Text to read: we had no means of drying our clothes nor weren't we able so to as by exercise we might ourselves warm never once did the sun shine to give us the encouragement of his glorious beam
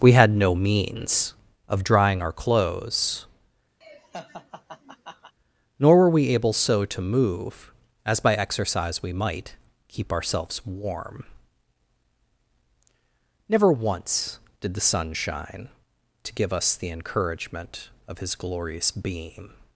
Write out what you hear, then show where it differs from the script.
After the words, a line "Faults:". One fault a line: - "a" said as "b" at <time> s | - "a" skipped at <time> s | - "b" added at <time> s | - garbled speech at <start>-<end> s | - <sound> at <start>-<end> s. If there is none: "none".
we had no means of drying our clothes nor were we able so to move as by exercise we might keep ourselves warm never once did the sun shine to give us the encouragement of his glorious beam
Faults:
- laugh at 3.8-5.3 s
- "weren't" said as "were" at 6.0 s
- "move" added at 7.0 s
- "keep" added at 9.9 s